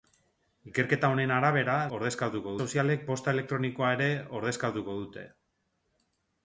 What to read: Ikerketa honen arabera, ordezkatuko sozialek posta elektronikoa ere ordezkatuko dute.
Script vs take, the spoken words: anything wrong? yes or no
no